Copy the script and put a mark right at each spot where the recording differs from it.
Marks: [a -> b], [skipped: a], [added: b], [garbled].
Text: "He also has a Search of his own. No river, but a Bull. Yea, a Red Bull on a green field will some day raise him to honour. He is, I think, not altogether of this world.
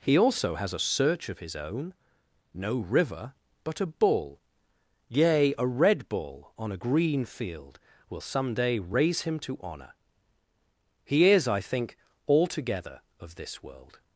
"He also has a Search of his own. No river, but a Bull. Yea, a Red Bull on a green field will some day raise him to honour. He is, I think, [skipped: not] altogether of this world.